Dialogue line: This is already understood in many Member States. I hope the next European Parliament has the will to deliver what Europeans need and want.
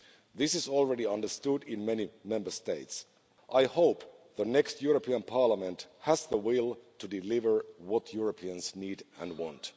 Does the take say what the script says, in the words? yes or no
yes